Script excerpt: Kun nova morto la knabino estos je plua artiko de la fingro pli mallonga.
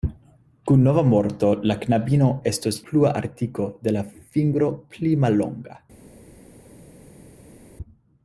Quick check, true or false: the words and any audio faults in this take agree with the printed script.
false